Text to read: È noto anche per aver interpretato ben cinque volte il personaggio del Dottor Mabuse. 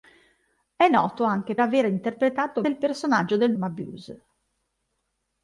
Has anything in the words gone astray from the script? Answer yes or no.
yes